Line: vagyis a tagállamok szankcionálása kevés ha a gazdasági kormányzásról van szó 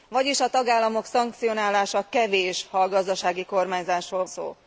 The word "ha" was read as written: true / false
true